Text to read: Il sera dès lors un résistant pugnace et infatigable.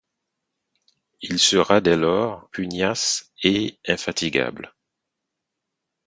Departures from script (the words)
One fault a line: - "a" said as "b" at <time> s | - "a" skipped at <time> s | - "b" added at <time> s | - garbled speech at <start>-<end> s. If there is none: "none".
- "un résistant" skipped at 2.5 s